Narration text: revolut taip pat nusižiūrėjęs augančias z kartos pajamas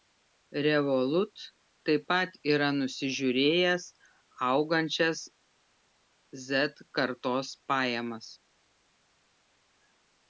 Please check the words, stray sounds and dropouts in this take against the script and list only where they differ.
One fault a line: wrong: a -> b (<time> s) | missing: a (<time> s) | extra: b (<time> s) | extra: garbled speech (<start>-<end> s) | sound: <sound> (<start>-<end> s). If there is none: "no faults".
extra: yra (2.5 s)